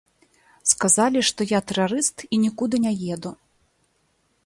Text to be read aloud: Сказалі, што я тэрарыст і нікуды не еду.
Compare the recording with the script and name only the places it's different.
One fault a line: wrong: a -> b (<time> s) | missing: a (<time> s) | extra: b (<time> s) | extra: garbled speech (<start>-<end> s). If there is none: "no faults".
no faults